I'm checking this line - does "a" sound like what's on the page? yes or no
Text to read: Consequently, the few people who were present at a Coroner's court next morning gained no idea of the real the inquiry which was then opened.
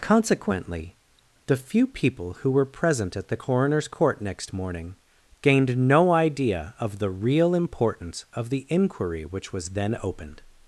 no